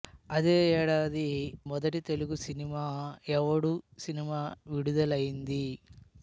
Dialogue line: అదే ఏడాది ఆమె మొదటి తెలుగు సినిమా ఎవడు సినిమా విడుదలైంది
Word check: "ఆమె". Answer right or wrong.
wrong